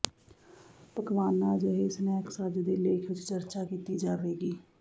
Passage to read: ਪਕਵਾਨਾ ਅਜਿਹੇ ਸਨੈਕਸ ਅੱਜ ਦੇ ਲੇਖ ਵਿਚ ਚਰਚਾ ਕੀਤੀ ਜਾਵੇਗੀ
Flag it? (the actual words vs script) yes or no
no